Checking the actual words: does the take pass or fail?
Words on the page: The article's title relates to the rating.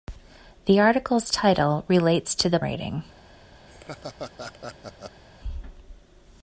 pass